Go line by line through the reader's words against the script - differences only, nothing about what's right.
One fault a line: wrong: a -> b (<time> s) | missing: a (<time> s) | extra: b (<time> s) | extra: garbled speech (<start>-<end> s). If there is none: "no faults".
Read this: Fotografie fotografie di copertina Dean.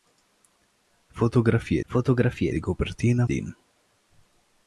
no faults